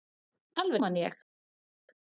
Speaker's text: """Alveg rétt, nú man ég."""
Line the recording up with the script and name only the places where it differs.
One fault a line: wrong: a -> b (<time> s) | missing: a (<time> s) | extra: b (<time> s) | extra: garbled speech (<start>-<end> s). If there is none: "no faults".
missing: rétt nú (0.8 s)